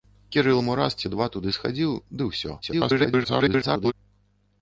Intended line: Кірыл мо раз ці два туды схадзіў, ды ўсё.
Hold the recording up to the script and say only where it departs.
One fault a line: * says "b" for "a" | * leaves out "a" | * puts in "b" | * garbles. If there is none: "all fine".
* garbles